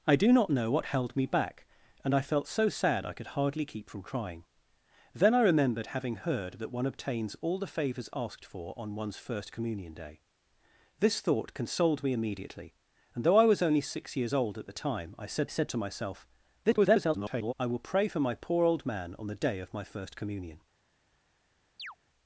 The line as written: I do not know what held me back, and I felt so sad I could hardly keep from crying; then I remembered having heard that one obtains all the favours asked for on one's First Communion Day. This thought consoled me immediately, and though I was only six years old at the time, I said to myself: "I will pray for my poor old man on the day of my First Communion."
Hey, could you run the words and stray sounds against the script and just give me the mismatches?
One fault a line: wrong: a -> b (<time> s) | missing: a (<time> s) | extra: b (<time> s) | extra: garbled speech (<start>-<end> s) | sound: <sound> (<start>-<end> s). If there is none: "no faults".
extra: said (15.5 s)
extra: garbled speech (16.6-17.5 s)
sound: chirp (21.8-22.0 s)